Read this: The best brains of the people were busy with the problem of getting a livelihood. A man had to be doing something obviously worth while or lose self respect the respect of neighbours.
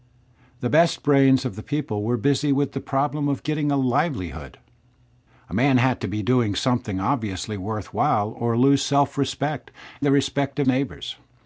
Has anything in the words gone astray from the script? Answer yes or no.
no